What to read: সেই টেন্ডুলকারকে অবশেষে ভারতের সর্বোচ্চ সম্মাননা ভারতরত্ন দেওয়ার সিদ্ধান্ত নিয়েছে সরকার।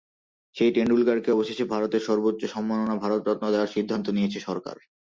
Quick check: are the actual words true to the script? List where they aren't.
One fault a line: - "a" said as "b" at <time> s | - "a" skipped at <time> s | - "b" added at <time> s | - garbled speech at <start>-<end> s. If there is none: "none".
none